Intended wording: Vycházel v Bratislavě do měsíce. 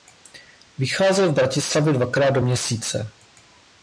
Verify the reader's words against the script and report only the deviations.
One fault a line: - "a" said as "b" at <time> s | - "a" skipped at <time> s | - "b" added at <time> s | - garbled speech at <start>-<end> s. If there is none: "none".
- "dvakrát" added at 1.9 s